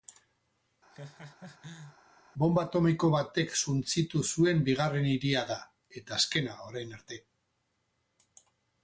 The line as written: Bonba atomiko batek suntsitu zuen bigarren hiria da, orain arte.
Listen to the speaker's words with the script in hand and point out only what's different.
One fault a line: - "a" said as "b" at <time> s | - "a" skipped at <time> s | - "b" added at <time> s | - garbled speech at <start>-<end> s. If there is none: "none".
- "eta azkena" added at 6.0 s